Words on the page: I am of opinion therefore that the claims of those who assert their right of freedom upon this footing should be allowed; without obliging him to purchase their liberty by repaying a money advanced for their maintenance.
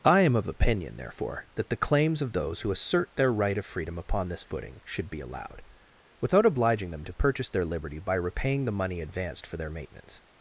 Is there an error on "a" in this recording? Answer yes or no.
yes